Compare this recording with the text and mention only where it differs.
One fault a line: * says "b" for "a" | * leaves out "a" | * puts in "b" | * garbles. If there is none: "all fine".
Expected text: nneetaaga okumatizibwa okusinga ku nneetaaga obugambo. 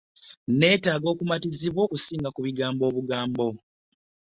* says "bigambo" for "nneetaaga"